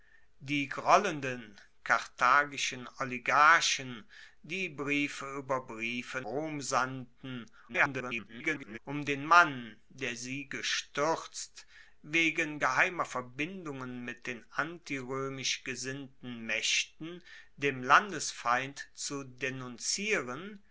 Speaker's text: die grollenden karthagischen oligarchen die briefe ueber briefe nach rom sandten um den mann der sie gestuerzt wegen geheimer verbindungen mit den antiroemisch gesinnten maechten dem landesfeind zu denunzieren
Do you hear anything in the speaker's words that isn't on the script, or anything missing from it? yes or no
yes